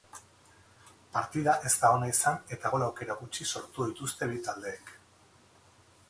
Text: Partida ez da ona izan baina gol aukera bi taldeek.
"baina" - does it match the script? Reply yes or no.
no